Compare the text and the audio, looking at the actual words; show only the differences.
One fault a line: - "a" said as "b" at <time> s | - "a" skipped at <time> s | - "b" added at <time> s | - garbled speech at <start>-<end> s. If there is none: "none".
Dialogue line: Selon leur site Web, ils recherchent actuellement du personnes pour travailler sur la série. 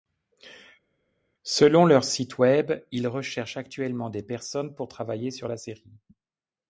- "du" said as "des" at 4.1 s